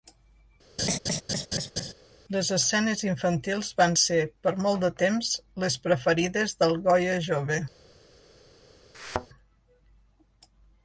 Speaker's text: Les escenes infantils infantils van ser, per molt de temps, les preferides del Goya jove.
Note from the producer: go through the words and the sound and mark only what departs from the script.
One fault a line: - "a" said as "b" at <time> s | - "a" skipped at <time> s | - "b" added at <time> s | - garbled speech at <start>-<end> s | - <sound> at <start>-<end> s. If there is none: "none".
- laugh at 0.8-1.9 s
- "infantils" skipped at 3.7 s
- thud at 8.9-9.3 s